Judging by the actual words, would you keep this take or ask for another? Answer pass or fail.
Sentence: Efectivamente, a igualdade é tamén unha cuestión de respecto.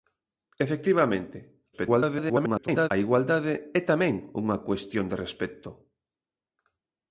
fail